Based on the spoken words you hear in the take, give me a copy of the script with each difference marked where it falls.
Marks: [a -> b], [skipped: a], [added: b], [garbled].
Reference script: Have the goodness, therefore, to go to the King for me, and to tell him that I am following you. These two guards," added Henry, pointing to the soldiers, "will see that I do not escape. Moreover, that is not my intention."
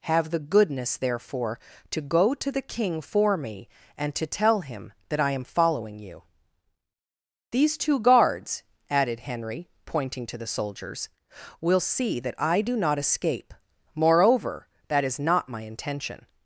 Have the goodness, therefore, to go to the King for me, and to tell him that I am following you. These two guards," added Henry, pointing to the soldiers, "will see that I do not escape. Moreover, that is not my intention."